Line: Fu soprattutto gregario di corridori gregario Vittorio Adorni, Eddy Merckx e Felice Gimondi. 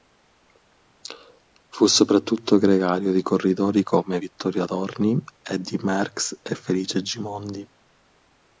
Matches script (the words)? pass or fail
fail